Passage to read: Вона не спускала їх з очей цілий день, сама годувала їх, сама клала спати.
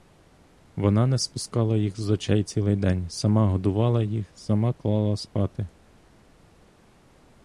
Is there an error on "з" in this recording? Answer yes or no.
no